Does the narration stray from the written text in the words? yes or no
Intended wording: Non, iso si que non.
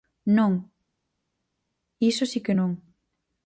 no